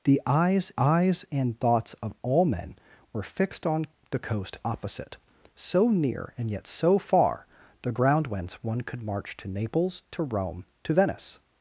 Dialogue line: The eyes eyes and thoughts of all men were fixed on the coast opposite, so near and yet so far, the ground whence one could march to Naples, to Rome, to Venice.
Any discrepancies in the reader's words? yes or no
no